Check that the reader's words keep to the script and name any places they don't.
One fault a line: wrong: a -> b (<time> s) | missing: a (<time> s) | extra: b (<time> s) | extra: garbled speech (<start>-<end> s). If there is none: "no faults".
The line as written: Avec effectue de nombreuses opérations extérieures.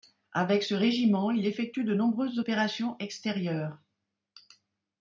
extra: ce régiment il (0.6 s)